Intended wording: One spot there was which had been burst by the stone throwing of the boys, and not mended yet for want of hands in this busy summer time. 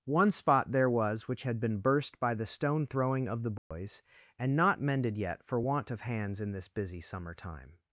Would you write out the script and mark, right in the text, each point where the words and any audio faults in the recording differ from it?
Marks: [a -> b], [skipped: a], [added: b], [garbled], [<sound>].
One spot there was which had been burst by the stone throwing of the boys, [dropout] and not mended yet for want of hands in this busy summer time.